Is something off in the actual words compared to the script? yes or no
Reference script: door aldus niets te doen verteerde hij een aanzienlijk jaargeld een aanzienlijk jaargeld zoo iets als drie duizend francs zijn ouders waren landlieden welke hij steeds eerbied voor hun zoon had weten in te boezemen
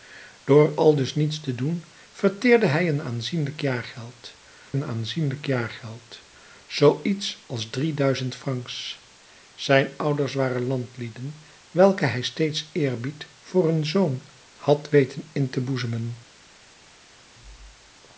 no